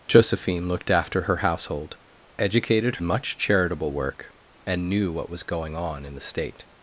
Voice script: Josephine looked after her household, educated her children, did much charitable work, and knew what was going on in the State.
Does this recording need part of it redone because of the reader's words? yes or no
yes